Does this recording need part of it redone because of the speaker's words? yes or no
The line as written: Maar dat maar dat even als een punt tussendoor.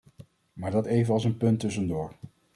yes